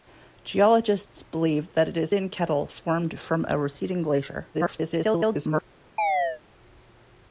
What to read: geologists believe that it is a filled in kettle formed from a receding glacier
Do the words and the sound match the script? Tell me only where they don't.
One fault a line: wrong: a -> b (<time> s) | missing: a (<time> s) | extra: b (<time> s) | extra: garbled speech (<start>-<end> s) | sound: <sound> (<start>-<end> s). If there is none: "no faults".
missing: a filled (2.1 s)
extra: garbled speech (4.5-5.6 s)
sound: chirp (6.0-6.4 s)